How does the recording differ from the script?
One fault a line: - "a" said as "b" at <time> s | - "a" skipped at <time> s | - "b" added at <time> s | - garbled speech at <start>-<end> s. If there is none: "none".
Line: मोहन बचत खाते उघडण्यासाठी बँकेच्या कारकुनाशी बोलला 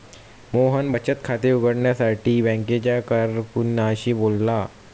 none